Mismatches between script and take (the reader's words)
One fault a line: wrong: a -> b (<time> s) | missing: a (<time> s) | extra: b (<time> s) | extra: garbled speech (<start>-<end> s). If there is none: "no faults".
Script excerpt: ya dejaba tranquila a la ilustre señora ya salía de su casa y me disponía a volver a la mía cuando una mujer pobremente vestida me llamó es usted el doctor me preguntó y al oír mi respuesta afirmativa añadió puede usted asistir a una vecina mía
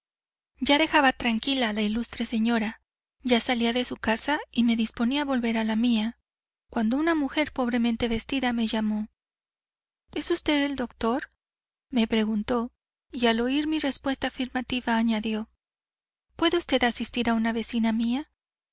no faults